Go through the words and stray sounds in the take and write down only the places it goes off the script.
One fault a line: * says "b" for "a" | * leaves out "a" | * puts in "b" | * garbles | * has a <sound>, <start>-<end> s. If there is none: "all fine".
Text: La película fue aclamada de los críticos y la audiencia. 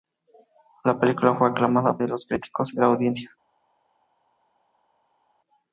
all fine